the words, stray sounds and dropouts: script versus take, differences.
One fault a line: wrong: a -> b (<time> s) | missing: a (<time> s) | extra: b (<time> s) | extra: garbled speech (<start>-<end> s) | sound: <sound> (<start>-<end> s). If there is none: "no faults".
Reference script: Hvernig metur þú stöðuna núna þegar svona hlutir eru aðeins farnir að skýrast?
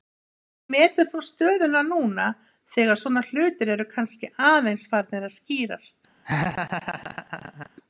extra: kannski (3.9 s)
sound: laugh (6.2-7.7 s)